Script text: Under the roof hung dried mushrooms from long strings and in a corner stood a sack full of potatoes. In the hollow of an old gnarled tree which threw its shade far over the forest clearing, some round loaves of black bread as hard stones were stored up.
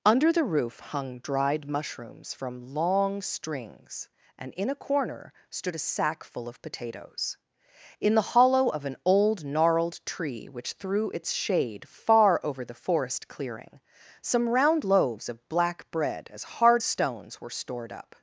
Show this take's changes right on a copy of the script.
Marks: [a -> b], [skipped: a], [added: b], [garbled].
Under the roof hung dried mushrooms from long strings and in a corner stood a sack full of potatoes. In the hollow of an old gnarled tree which threw its shade far over the forest clearing, some round loaves of black bread as hard stones were stored up.